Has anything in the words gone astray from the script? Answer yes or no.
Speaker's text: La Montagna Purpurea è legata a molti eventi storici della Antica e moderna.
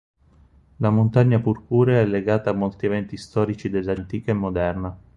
no